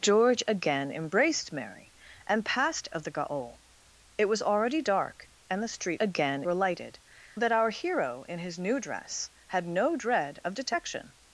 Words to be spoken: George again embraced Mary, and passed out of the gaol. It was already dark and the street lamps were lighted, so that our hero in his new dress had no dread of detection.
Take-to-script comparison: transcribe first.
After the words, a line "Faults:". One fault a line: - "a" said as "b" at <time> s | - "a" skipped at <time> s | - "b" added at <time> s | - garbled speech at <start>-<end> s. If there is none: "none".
George again embraced Mary, and passed of the gaol. It was already dark and the street again were lighted, that our hero in his new dress had no dread of detection.
Faults:
- "out" skipped at 2.9 s
- "lamps" said as "again" at 6.0 s
- "so" skipped at 7.0 s